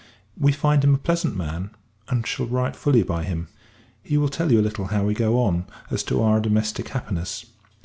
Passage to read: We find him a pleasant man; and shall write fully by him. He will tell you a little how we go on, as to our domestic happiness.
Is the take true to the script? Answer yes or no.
yes